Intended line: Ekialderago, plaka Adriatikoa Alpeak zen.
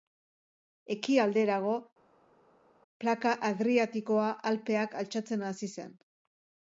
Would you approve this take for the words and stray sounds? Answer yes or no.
no